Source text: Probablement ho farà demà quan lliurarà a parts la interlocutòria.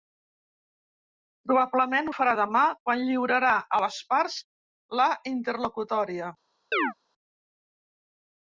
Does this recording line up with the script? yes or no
no